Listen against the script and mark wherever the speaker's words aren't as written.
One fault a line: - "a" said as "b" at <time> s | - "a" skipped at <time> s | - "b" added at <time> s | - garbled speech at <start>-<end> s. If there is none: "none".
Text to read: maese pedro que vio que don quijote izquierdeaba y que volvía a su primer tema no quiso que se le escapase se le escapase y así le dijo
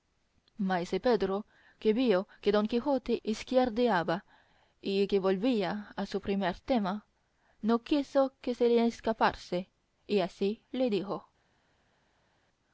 - "se le escapase" skipped at 9.7 s